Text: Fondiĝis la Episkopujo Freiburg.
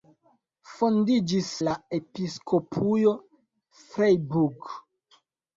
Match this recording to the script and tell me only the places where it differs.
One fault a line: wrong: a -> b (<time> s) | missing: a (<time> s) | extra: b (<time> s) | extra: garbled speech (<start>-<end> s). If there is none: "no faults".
no faults